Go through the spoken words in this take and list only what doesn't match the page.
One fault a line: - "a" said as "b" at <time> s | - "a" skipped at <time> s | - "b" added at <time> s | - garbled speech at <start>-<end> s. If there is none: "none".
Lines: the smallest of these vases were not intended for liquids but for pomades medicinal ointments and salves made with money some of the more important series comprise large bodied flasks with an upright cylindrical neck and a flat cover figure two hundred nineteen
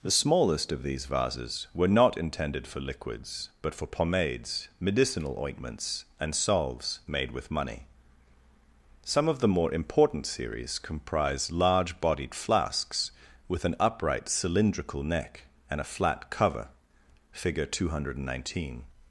none